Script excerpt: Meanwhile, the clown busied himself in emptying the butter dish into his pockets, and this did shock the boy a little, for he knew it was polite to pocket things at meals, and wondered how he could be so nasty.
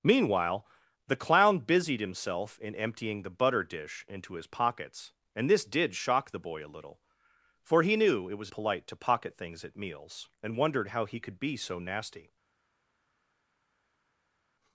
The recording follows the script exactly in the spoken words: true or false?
true